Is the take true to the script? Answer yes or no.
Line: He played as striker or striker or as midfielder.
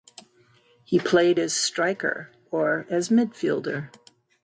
no